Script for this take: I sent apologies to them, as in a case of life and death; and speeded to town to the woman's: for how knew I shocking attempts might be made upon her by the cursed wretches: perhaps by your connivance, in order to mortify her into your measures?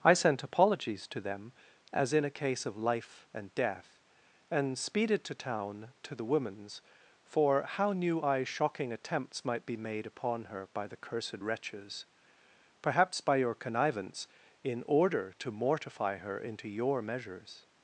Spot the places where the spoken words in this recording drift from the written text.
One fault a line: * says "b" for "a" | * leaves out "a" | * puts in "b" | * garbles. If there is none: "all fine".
all fine